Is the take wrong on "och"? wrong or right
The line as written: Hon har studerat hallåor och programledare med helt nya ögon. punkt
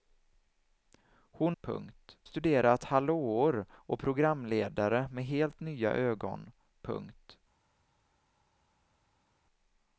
right